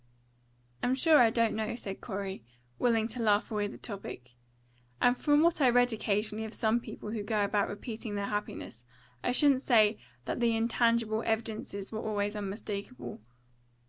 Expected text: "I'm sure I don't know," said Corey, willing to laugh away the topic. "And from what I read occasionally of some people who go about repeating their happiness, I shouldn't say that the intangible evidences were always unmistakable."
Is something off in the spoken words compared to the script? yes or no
no